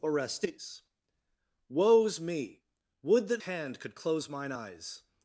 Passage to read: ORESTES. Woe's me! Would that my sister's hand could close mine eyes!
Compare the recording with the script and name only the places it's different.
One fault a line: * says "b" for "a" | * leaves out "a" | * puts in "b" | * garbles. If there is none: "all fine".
* leaves out "my sister's"